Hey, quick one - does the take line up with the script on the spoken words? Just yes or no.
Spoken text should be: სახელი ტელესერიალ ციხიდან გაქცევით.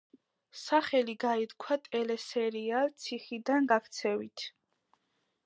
no